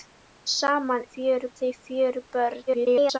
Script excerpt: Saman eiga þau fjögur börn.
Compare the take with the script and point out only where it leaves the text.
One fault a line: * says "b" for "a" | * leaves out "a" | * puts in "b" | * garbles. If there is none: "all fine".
* says "fjögur" for "eiga"
* garbles